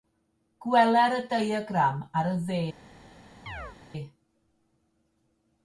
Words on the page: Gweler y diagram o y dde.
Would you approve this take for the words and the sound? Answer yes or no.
no